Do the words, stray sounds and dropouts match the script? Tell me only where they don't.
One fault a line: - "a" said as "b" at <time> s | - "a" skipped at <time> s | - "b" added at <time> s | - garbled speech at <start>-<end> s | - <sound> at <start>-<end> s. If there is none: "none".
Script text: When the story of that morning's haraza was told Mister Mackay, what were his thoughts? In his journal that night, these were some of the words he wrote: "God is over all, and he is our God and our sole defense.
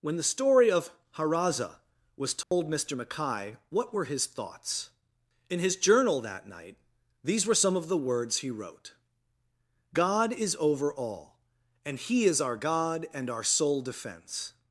- "that morning's" skipped at 0.9 s
- dropout at 2.4-2.5 s